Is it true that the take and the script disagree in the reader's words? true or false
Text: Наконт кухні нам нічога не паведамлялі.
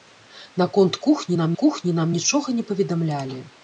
true